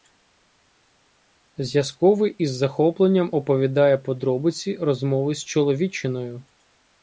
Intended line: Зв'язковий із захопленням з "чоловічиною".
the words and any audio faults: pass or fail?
fail